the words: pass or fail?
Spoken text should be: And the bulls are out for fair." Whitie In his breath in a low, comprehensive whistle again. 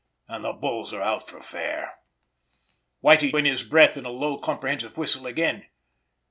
pass